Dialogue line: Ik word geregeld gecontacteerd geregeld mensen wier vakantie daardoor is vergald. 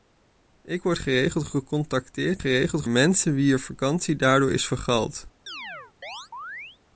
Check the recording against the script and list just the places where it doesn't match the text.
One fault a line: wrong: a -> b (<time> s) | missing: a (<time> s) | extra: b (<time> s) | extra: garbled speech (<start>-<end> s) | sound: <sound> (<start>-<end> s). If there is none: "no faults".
sound: chirp (5.5-6.8 s)